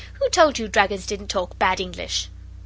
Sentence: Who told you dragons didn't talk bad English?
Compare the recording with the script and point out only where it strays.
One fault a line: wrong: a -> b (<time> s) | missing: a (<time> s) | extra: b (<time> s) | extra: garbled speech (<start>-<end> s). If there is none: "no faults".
no faults